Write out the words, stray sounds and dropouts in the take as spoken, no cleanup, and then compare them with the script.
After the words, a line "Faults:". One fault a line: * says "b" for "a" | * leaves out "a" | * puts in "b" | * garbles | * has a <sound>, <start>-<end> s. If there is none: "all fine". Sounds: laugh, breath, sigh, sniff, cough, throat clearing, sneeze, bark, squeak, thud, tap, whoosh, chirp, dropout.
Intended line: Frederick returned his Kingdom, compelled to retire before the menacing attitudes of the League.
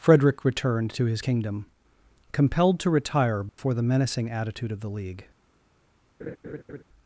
Frederick returned to his Kingdom, compelled to retire before the menacing attitude of the League.
Faults:
* puts in "to"
* has a dropout, 3.5-3.6 s
* says "attitude" for "attitudes"
* has a laugh, 6.2-6.8 s